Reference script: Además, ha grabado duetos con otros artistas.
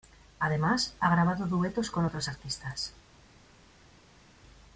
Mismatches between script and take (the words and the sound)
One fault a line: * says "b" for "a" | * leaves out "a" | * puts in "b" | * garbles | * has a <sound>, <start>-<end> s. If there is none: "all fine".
all fine